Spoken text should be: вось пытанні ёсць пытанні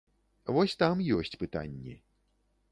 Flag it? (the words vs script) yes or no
yes